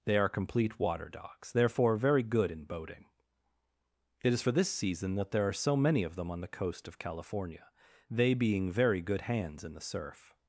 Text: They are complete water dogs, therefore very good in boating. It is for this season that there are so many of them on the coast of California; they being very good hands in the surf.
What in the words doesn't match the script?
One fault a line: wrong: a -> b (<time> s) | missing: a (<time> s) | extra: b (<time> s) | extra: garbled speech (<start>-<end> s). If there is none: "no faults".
no faults